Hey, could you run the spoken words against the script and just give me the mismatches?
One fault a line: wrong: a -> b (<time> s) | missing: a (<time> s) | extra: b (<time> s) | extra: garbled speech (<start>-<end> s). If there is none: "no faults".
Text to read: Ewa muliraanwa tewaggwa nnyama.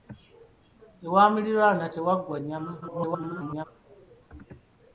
extra: garbled speech (2.8-3.7 s)